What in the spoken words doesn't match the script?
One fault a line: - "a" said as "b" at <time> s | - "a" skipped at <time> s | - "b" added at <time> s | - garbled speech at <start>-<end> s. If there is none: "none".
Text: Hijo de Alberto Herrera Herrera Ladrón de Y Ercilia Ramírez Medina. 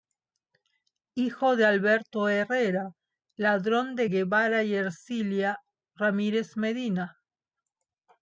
- "Herrera" skipped at 2.9 s
- "Guevara" added at 4.1 s